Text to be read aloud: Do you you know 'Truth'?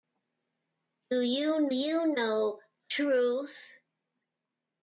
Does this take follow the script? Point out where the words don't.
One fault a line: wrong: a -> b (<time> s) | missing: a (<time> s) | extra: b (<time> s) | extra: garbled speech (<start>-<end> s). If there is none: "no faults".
no faults